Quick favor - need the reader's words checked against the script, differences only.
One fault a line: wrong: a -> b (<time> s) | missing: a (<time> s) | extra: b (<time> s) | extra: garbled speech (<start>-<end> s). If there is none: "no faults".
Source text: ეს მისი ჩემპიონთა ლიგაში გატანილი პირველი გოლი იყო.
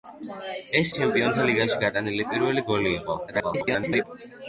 missing: მისი (0.9 s)
extra: garbled speech (3.3-4.0 s)